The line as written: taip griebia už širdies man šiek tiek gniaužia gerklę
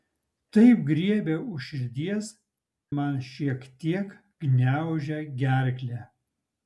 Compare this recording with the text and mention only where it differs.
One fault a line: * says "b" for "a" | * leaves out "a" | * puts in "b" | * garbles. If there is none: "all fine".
all fine